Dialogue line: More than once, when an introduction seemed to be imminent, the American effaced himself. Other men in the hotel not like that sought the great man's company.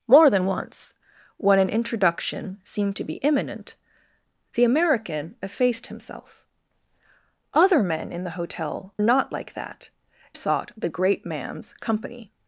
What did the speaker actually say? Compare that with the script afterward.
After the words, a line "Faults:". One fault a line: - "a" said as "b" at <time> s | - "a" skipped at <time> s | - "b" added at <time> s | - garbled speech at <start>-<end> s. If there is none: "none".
More than once, when an introduction seemed to be imminent, the American effaced himself. Other men in the hotel not like that sought the great man's company.
Faults:
none